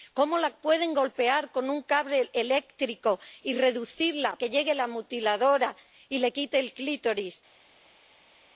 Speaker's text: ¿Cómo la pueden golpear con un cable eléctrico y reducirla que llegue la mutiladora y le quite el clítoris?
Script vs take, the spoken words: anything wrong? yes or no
no